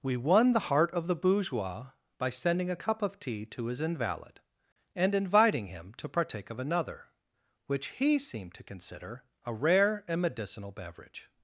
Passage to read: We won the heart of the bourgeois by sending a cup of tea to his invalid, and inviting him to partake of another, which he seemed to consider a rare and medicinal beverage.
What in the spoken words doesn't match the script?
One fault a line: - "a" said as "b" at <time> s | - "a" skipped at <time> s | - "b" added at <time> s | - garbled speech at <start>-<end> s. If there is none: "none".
none